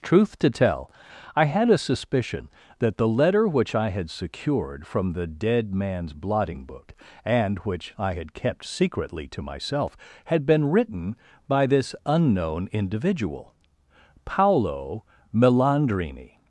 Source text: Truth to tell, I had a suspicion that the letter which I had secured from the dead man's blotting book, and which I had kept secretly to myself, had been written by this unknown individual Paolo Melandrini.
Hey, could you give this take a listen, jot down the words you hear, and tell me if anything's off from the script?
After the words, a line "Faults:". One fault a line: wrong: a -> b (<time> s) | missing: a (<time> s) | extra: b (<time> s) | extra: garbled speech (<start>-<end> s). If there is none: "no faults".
Truth to tell, I had a suspicion that the letter which I had secured from the dead man's blotting book, and which I had kept secretly to myself, had been written by this unknown individual Paolo Melandrini.
Faults:
no faults